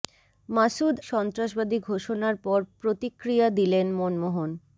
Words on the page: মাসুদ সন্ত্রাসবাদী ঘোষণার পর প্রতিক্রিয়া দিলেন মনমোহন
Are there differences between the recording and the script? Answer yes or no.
no